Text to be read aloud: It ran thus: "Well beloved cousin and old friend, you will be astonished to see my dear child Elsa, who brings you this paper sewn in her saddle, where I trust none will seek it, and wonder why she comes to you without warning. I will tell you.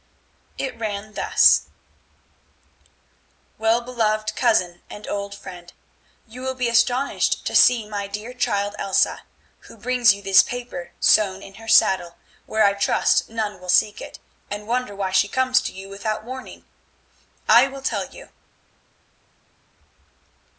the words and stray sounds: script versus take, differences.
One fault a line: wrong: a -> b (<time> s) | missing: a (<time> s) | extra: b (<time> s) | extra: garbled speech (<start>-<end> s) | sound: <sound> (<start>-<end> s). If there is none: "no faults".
no faults